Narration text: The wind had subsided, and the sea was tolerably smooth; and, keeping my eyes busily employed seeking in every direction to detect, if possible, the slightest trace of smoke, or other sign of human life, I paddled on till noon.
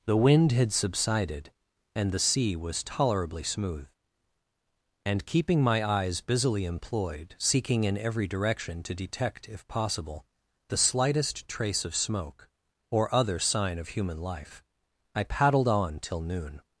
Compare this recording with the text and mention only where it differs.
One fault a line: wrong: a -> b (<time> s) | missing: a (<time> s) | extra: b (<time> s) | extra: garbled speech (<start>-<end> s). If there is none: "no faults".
no faults